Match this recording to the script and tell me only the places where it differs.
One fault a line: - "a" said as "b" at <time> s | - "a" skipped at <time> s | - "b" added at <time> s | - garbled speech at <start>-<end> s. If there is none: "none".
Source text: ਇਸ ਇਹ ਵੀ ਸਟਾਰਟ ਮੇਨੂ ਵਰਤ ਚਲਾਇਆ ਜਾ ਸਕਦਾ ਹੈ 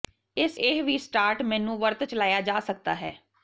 none